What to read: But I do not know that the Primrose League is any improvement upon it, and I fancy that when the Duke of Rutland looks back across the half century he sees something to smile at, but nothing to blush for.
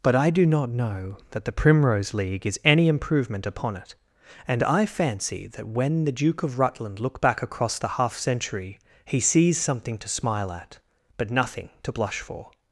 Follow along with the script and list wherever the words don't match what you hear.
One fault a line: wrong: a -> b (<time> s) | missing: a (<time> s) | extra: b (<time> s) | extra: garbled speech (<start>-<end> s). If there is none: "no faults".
wrong: looks -> look (7.0 s)